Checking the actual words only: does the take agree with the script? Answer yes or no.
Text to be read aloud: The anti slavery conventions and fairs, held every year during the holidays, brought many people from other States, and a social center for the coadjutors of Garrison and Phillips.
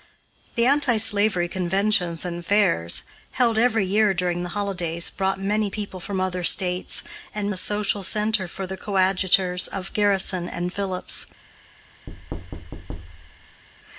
yes